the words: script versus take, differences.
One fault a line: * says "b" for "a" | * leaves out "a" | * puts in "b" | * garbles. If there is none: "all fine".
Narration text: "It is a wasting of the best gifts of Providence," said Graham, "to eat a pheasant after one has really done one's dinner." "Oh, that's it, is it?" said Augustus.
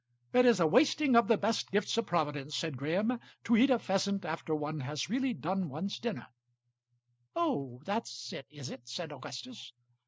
all fine